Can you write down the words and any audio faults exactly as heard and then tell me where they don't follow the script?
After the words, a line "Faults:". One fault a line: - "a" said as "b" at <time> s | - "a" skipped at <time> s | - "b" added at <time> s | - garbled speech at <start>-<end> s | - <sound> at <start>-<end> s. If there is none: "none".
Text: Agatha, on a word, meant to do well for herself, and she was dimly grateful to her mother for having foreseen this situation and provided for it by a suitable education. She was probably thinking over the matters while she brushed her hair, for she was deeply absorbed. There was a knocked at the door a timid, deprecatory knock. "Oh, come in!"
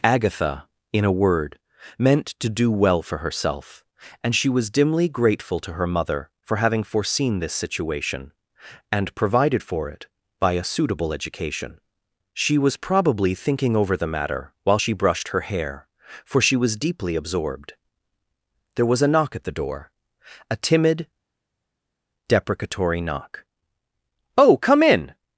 Agatha, in a word, meant to do well for herself, and she was dimly grateful to her mother for having foreseen this situation and provided for it by a suitable education. She was probably thinking over the matter while she brushed her hair, for she was deeply absorbed. There was a knock at the door a timid, deprecatory knock. "Oh, come in!"
Faults:
- "on" said as "in" at 0.9 s
- "matters" said as "matter" at 14.1 s
- "knocked" said as "knock" at 19.1 s